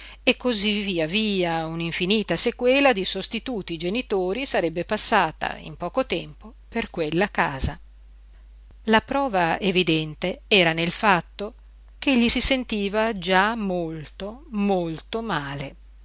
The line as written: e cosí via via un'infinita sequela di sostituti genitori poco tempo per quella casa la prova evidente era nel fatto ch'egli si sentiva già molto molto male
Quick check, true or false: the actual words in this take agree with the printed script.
false